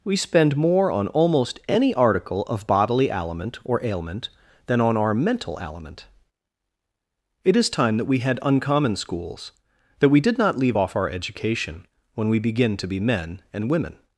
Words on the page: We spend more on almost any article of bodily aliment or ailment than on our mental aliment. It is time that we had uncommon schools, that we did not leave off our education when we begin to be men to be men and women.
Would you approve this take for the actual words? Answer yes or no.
no